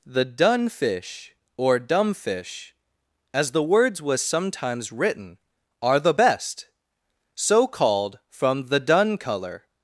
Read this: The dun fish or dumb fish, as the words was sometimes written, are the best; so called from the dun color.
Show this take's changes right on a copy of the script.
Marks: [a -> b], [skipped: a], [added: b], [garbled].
The dun fish or dumb fish, as the words was sometimes written, are the best; so called from the dun color.